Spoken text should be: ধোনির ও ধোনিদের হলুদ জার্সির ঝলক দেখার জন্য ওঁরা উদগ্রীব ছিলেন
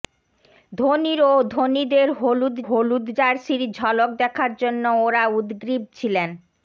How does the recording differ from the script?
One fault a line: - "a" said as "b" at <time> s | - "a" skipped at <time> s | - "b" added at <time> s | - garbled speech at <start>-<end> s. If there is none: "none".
- "হলুদ" added at 2.7 s